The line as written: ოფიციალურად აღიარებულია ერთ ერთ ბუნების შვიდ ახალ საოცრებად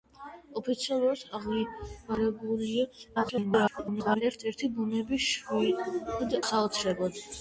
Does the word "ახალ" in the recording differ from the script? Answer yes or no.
yes